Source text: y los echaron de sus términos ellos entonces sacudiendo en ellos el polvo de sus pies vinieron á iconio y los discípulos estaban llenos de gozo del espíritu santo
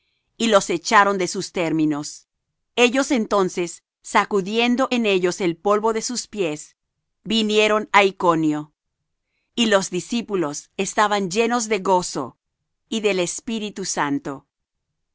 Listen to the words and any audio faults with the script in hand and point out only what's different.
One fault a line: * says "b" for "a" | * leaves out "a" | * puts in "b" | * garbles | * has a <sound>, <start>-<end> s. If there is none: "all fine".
* puts in "y"